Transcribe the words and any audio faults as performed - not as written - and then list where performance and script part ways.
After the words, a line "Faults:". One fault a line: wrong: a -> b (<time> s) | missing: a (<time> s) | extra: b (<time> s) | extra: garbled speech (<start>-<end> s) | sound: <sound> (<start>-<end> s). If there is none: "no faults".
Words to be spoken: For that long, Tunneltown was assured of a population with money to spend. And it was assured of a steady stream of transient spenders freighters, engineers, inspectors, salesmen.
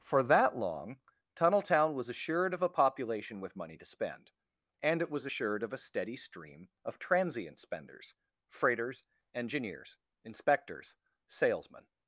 For that long, Tunneltown was assured of a population with money to spend. And it was assured of a steady stream of transient spenders freighters, engineers, inspectors, salesmen.
Faults:
no faults